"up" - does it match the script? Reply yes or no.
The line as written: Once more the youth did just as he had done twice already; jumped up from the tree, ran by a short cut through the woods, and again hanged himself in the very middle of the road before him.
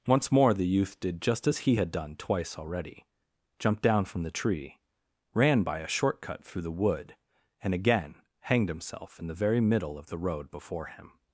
no